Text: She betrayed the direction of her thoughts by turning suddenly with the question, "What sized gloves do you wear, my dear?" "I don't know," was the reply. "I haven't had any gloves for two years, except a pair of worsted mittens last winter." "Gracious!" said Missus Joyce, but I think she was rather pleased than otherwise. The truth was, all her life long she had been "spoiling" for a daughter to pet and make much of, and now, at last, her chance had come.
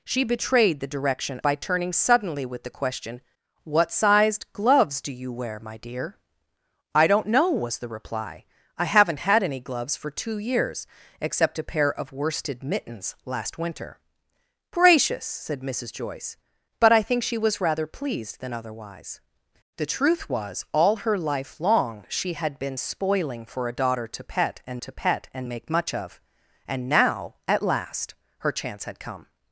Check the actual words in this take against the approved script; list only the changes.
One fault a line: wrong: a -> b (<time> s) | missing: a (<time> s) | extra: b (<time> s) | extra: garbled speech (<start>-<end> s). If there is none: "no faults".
missing: of her thoughts (1.4 s)
extra: to pet and (24.8 s)